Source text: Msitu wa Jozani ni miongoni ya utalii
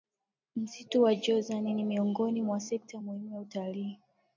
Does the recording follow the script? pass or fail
fail